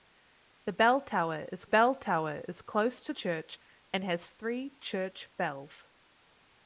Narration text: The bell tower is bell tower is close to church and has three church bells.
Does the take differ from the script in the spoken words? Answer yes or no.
no